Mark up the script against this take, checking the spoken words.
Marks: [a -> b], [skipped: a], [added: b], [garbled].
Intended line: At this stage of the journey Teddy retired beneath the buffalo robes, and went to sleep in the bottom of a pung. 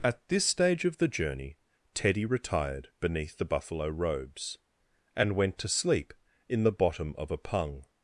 At this stage of the journey Teddy retired beneath the buffalo robes, and went to sleep in the bottom of a pung.